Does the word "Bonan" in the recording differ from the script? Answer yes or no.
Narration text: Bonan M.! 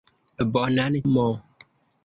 no